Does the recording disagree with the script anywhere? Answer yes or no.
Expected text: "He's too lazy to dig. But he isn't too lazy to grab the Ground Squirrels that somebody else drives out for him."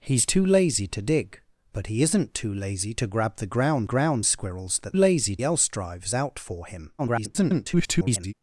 yes